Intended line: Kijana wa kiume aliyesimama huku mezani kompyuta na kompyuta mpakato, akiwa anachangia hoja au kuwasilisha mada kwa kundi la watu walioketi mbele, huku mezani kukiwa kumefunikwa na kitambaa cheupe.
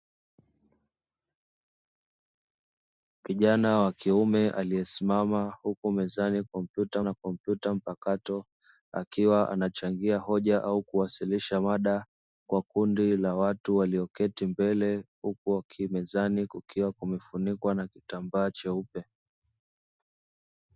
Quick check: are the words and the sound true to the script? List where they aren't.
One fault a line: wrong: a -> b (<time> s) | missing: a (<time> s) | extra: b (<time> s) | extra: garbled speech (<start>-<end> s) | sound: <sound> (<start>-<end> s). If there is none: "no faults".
no faults